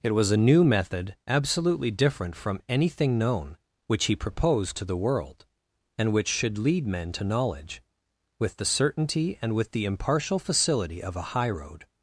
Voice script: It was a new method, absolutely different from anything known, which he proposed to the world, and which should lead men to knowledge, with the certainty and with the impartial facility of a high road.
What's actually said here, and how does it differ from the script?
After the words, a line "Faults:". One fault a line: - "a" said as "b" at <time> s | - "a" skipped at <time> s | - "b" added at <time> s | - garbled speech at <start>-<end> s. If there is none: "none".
It was a new method, absolutely different from anything known, which he proposed to the world, and which should lead men to knowledge, with the certainty and with the impartial facility of a high road.
Faults:
none